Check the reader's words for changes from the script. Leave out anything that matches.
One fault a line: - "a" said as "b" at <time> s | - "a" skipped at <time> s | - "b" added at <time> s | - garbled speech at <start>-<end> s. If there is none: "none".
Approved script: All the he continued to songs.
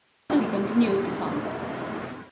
none